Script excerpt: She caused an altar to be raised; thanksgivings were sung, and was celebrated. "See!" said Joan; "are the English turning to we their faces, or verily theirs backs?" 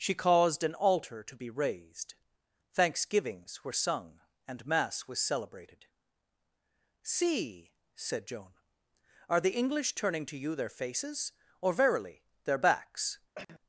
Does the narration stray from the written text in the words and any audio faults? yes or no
yes